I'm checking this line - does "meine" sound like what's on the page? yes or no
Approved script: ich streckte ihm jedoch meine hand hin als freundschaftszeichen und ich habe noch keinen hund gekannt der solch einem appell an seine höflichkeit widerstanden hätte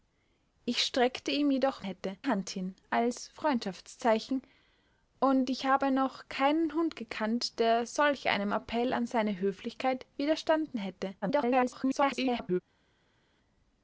no